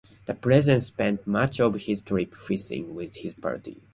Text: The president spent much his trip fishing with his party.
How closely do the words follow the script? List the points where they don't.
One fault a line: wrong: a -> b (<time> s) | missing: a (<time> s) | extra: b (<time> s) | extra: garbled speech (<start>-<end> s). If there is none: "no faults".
extra: of (1.6 s)